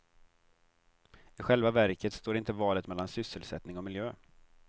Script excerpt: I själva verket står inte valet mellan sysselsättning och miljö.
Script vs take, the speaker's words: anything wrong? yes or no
no